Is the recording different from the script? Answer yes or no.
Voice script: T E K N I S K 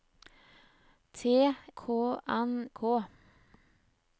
yes